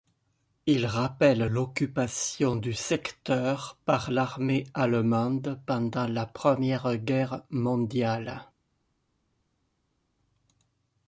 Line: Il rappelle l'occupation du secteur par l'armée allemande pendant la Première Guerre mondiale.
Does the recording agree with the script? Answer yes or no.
yes